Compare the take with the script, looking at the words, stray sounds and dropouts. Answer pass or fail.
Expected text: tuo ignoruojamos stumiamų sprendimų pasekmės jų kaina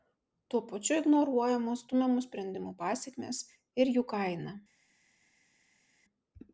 fail